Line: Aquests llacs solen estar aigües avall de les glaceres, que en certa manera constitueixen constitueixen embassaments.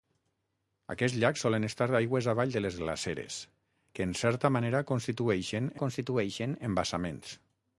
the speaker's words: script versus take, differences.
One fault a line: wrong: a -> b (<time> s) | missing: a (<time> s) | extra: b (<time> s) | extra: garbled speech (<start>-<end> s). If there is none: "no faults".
no faults